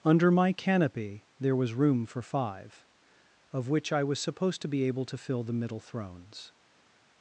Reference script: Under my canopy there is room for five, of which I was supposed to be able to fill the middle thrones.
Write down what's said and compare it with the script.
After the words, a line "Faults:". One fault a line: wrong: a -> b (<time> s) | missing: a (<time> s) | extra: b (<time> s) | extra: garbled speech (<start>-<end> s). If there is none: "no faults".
Under my canopy there was room for five, of which I was supposed to be able to fill the middle thrones.
Faults:
wrong: is -> was (1.6 s)